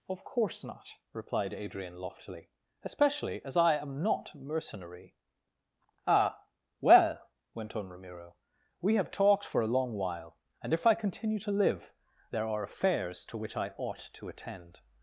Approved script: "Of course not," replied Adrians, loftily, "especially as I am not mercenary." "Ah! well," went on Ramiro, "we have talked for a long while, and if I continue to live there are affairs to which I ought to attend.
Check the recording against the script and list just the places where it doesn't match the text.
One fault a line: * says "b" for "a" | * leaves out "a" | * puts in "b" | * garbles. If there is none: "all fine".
* says "Adrian" for "Adrians"